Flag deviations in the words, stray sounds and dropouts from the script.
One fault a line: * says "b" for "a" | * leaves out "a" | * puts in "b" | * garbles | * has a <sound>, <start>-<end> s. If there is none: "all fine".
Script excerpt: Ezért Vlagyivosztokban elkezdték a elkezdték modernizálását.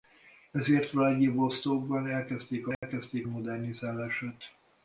* has a dropout, 2.7-2.8 s